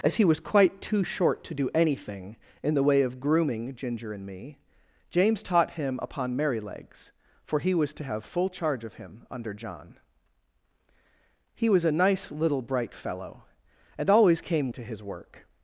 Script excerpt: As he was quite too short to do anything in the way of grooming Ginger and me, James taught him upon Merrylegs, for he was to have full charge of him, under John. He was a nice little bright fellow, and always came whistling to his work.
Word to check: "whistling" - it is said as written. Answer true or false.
false